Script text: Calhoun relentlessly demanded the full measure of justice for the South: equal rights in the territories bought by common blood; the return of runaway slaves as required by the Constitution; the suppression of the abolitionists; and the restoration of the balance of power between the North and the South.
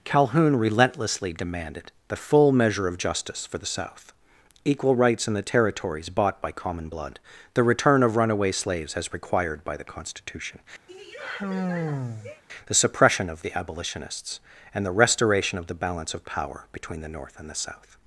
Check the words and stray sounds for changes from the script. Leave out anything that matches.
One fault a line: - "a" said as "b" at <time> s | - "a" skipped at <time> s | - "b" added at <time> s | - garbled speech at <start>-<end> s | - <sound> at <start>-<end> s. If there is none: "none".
- sigh at 10.9-12.4 s